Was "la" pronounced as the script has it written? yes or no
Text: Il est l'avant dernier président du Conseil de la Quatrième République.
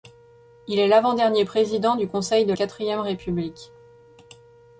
no